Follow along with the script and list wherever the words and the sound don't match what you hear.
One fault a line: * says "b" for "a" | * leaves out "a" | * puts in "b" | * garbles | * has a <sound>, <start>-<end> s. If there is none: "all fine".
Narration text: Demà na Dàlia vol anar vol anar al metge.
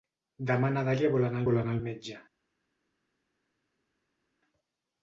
all fine